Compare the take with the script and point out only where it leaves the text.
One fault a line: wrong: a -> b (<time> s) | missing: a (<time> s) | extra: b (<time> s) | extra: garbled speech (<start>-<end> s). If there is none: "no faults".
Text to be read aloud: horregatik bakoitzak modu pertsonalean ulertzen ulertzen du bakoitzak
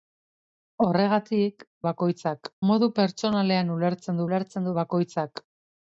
no faults